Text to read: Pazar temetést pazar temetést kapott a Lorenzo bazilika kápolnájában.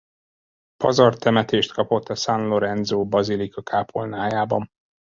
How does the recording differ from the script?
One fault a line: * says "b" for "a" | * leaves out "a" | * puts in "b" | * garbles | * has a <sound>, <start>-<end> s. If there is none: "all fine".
* leaves out "pazar temetést"
* puts in "San"